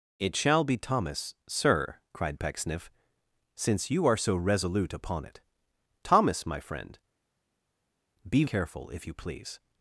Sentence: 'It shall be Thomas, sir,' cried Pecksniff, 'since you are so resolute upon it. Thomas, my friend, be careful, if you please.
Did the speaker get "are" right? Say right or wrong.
right